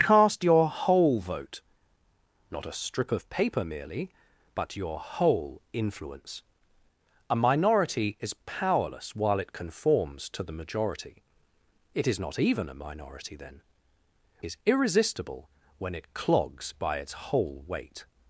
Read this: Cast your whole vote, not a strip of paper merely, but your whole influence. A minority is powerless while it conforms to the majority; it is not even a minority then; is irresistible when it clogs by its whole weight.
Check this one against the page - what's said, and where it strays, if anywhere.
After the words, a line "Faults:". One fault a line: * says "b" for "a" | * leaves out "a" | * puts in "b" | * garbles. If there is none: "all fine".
Cast your whole vote, not a strip of paper merely, but your whole influence. A minority is powerless while it conforms to the majority; it is not even a minority then; is irresistible when it clogs by its whole weight.
Faults:
all fine